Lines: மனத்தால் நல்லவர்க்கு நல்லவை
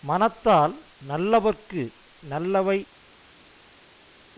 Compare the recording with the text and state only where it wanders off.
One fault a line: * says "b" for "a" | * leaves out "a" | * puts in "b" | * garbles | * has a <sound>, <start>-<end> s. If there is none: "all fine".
all fine